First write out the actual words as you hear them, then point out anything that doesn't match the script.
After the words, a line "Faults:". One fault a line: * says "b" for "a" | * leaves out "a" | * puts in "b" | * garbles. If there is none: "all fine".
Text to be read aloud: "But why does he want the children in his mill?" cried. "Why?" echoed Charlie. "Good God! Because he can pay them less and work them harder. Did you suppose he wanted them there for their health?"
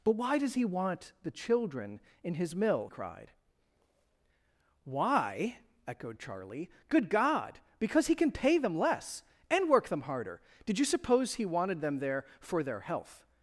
"But why does he want the children in his mill?" cried. "Why?" echoed Charlie. "Good God! Because he can pay them less and work them harder. Did you suppose he wanted them there for their health?"
Faults:
all fine